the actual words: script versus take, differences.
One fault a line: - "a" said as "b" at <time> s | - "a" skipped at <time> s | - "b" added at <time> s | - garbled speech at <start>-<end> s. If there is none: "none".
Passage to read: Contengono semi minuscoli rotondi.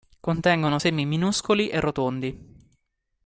- "e" added at 1.7 s